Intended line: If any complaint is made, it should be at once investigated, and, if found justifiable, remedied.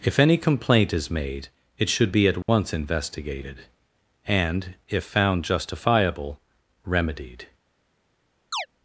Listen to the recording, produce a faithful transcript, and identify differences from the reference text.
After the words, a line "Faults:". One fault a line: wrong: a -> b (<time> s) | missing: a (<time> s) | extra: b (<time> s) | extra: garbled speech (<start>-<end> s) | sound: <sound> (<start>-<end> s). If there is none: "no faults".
If any complaint is made, it should be at once investigated, and, if found justifiable, remedied.
Faults:
sound: dropout (2.4-2.5 s)
sound: chirp (8.5-8.7 s)